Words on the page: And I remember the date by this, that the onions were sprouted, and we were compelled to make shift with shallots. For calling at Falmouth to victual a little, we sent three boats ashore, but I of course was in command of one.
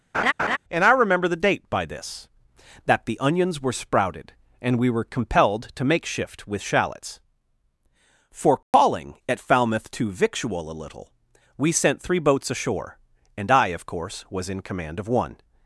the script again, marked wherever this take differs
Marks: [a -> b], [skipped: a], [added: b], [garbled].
And I remember the date by this, that the onions were sprouted, and we were compelled to make shift with shallots. For calling at Falmouth to victual a little, we sent three boats ashore, [but -> and] I of course was in command of one.